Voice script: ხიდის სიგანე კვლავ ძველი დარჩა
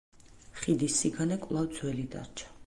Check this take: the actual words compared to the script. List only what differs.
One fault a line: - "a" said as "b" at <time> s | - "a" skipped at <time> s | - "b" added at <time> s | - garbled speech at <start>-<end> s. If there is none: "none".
none